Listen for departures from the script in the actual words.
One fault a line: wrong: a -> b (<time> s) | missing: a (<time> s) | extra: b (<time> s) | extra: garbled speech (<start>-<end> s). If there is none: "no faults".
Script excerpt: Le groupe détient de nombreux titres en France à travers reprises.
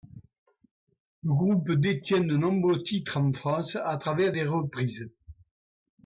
extra: des (4.3 s)